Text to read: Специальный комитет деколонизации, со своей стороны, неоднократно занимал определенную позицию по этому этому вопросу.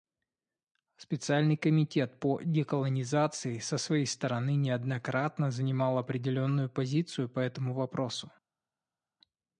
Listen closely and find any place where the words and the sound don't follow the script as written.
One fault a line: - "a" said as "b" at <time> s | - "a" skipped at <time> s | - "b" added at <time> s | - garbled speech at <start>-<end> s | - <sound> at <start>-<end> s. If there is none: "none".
- "по" added at 2.2 s
- "этому" skipped at 7.7 s